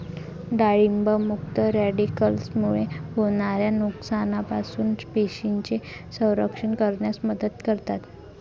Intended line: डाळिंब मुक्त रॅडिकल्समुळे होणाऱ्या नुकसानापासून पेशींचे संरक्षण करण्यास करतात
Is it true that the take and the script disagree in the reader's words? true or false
true